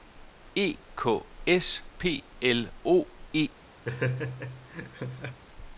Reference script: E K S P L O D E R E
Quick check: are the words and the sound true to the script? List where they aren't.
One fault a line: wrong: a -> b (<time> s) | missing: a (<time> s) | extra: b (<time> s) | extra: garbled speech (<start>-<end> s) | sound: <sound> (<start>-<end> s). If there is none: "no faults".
missing: D E R (3.1 s)
sound: laugh (3.8-5.4 s)